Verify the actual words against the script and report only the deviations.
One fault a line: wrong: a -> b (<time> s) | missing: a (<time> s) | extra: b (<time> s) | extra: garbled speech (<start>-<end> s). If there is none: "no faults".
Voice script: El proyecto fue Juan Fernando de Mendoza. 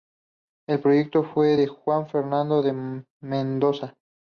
extra: de (1.5 s)